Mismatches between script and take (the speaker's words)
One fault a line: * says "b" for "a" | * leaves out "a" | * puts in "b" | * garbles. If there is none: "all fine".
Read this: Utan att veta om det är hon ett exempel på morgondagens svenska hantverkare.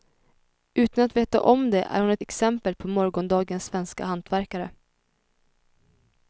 all fine